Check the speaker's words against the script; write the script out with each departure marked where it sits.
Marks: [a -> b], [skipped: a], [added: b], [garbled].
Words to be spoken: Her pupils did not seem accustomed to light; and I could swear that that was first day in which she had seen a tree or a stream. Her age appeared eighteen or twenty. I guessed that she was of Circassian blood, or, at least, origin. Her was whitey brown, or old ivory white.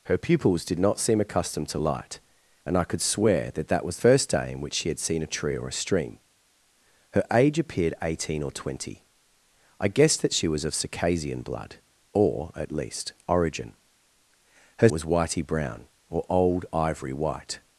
Her pupils did not seem accustomed to light; and I could swear that that was first day in which she had seen a tree or a stream. Her age appeared eighteen or twenty. I guessed that she was of Circassian blood, or, at least, origin. Her was whitey brown, or old ivory white.